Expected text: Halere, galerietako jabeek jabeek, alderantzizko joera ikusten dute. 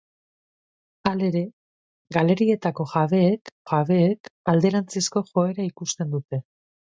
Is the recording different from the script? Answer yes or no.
no